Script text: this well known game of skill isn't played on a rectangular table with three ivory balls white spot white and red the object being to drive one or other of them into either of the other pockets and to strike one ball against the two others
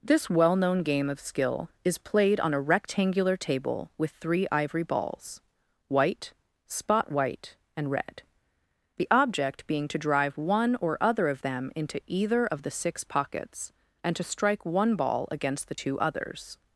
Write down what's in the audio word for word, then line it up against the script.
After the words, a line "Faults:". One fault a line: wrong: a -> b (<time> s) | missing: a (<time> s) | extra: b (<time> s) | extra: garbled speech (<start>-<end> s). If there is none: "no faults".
this well known game of skill is played on a rectangular table with three ivory balls white spot white and red the object being to drive one or other of them into either of the six pockets and to strike one ball against the two others
Faults:
wrong: isn't -> is (1.8 s)
wrong: other -> six (12.7 s)